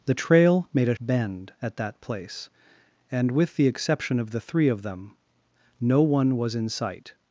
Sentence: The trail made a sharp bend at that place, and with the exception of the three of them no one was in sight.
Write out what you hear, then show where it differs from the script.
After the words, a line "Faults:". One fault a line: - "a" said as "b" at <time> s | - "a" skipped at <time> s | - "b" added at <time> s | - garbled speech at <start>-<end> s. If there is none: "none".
The trail made a bend at that place, and with the exception of the three of them no one was in sight.
Faults:
- "sharp" skipped at 0.9 s